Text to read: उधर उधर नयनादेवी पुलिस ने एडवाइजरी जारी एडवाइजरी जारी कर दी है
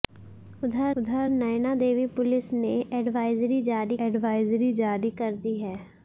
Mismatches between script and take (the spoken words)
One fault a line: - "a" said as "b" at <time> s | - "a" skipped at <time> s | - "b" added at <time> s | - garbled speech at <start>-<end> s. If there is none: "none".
none